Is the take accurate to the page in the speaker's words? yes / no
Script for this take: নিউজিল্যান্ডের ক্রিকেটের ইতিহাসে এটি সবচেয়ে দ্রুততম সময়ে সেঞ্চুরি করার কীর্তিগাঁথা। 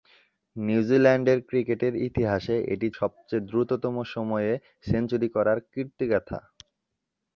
yes